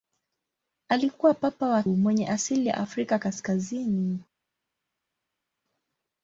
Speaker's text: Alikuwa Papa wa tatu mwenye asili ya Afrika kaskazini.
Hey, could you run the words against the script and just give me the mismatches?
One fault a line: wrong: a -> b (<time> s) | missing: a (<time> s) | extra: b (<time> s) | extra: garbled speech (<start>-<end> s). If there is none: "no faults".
missing: tatu (1.8 s)